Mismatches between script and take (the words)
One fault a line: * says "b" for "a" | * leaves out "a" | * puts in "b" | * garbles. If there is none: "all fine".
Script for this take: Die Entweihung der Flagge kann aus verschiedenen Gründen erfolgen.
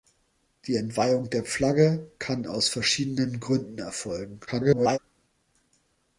* garbles